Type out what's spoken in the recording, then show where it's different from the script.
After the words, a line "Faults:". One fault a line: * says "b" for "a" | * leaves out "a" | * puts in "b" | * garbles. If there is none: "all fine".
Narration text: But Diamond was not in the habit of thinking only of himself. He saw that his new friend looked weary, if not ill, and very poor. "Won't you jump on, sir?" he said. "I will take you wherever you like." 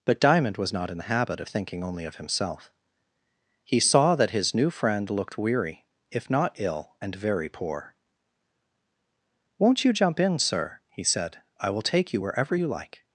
But Diamond was not in the habit of thinking only of himself. He saw that his new friend looked weary, if not ill, and very poor. "Won't you jump in, sir?" he said. "I will take you wherever you like."
Faults:
* says "in" for "on"